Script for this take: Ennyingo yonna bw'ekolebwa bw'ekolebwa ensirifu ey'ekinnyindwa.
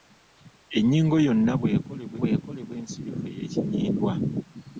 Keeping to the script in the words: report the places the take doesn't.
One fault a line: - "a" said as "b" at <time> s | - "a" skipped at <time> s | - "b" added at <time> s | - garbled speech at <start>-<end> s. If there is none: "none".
none